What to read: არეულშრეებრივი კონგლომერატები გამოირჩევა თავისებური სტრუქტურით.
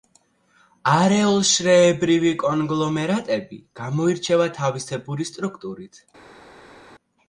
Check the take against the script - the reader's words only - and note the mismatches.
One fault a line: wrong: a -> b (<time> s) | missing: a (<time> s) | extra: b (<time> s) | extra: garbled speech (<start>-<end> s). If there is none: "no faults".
no faults